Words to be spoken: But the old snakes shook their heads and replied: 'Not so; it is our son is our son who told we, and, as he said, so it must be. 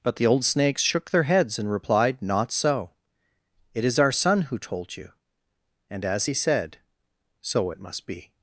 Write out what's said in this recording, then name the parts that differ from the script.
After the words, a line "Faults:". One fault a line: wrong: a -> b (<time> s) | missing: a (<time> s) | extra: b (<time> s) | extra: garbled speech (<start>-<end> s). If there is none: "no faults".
But the old snakes shook their heads and replied: 'Not so; it is our son who told you, and, as he said, so it must be.
Faults:
missing: is our son (4.4 s)
wrong: we -> you (5.0 s)